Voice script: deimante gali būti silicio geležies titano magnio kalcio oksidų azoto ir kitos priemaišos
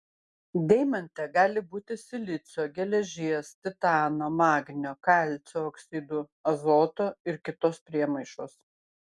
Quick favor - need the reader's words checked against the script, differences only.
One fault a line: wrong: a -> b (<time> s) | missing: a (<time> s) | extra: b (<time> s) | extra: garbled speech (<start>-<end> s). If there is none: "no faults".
no faults